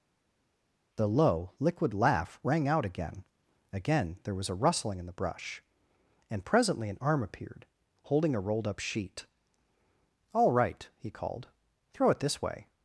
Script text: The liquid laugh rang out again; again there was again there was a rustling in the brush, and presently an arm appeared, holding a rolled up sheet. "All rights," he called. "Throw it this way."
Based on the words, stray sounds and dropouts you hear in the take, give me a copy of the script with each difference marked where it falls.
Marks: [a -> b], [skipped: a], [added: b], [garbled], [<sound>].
The [added: low] liquid laugh rang out again; again there was [skipped: again there was] a rustling in the brush, and presently an arm appeared, holding a rolled up sheet. "All [rights," -> right] he called. "Throw it this way."